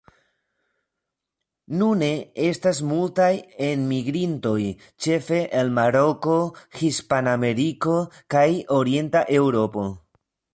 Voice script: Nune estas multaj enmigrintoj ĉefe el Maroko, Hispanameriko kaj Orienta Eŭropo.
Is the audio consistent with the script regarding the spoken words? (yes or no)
yes